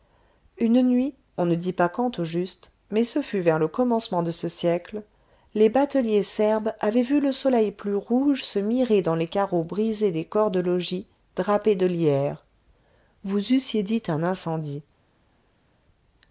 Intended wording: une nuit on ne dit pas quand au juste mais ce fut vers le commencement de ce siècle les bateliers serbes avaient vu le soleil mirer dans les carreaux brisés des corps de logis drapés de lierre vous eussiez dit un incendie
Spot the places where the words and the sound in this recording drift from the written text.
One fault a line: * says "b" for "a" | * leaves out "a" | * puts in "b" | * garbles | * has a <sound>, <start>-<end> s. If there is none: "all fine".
* puts in "plus rouge se"